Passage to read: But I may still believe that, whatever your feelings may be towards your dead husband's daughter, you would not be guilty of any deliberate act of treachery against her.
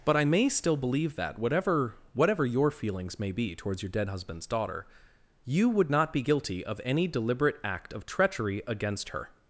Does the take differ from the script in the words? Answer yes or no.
yes